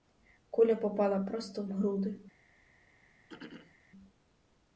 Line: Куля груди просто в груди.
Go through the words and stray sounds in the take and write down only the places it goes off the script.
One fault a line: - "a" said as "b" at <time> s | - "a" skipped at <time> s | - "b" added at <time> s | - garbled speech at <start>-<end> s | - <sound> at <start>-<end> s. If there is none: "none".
- "груди" said as "попала" at 0.8 s
- throat clearing at 3.3-3.8 s